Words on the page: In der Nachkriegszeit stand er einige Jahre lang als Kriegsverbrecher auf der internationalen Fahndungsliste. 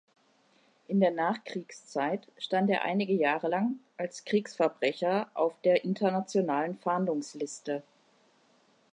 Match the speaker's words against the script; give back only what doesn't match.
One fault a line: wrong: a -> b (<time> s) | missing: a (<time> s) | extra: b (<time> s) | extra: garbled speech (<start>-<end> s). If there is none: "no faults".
no faults